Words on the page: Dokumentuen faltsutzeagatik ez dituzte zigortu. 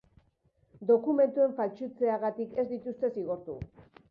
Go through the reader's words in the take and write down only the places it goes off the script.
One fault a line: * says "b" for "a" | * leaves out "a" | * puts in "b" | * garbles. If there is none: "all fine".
all fine